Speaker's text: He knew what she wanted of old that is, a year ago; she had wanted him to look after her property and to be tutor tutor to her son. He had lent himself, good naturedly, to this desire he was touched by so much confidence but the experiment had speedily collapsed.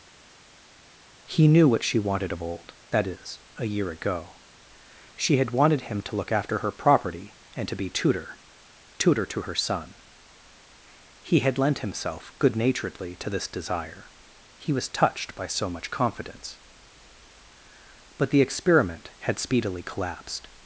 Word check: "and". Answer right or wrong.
right